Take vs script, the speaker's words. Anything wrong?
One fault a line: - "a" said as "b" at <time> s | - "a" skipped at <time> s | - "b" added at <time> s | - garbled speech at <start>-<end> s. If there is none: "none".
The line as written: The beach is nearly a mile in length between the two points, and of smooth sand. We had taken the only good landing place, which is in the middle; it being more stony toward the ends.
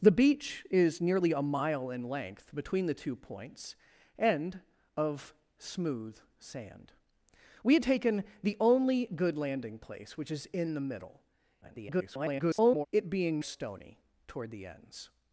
- garbled speech at 11.6-12.9 s
- "more" skipped at 13.4 s